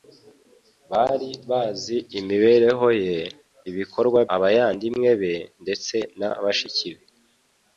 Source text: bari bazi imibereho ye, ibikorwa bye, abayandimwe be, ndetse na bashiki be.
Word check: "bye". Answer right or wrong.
wrong